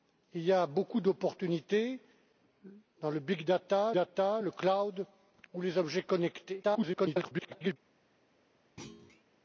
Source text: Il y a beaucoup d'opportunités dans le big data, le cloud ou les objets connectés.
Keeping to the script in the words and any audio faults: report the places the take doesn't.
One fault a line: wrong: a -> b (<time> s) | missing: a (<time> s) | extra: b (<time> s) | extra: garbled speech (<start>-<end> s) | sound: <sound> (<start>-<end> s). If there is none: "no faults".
extra: data (3.9 s)
extra: garbled speech (6.6-7.8 s)
sound: thud (8.8-9.2 s)